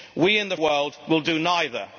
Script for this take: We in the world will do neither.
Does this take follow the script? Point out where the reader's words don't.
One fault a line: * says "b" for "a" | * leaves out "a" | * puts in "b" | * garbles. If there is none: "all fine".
all fine